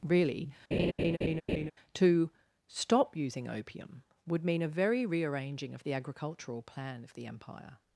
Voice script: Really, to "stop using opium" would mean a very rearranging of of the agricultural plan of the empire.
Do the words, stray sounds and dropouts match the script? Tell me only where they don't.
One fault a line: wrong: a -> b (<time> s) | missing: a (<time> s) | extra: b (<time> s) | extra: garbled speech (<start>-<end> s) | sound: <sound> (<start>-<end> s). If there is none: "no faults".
sound: laugh (0.7-1.7 s)
missing: of (5.8 s)